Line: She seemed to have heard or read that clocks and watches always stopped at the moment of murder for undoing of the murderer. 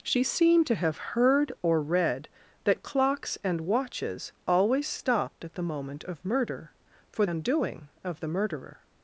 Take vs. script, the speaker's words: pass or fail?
pass